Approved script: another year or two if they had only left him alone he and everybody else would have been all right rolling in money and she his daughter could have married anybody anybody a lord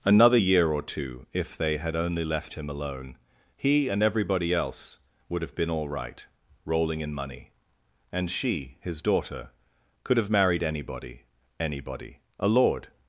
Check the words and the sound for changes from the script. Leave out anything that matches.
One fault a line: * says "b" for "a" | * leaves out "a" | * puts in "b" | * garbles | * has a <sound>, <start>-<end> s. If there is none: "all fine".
all fine